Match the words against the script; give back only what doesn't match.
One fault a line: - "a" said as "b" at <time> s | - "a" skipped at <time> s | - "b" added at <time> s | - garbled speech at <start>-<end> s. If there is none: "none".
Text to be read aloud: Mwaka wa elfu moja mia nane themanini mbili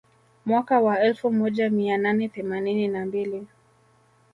- "na" added at 2.9 s